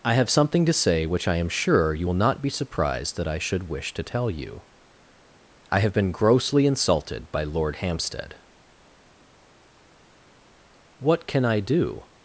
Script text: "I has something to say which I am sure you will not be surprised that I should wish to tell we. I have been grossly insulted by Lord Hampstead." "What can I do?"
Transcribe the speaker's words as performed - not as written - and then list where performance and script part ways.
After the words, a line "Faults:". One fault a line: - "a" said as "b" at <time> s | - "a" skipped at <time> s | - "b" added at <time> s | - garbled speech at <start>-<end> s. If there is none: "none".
"I have something to say which I am sure you will not be surprised that I should wish to tell you. I have been grossly insulted by Lord Hampstead." "What can I do?"
Faults:
- "has" said as "have" at 0.1 s
- "we" said as "you" at 4.3 s